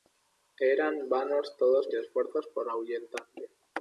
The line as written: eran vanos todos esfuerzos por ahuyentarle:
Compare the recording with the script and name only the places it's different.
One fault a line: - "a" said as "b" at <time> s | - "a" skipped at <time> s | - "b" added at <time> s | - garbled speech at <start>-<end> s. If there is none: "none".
none